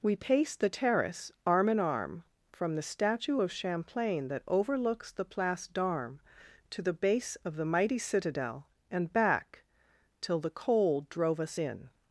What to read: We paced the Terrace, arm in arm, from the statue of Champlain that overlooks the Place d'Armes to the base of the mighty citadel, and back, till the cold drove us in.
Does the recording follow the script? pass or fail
pass